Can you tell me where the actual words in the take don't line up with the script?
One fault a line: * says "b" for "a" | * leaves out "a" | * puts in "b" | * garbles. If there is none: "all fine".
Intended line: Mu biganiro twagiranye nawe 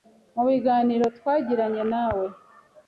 all fine